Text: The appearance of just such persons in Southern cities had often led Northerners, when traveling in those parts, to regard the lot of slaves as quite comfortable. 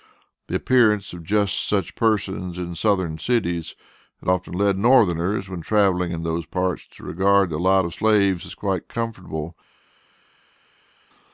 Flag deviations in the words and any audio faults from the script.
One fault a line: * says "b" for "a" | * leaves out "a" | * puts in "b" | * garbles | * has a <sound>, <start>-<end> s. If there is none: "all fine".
all fine